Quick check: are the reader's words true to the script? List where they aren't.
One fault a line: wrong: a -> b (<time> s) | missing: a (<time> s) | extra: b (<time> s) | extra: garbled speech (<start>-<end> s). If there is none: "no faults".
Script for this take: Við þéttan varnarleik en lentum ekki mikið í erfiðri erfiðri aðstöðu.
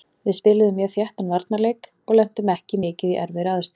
extra: spiluðum mjög (0.3 s)
wrong: en -> og (2.1 s)
missing: erfiðri (3.5 s)